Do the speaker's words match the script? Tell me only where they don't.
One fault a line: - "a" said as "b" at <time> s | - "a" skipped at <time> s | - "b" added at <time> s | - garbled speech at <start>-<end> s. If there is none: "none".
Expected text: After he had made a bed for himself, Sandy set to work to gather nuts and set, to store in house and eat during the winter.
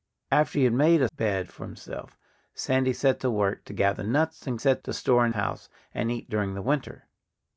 none